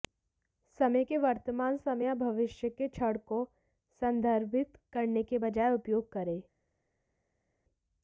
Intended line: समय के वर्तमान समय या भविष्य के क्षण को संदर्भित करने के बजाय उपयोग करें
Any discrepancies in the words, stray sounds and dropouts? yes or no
no